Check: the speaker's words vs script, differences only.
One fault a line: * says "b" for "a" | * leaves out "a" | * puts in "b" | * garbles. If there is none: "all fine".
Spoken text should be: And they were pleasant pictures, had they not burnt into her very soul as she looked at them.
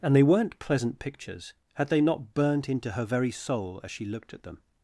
* says "weren't" for "were"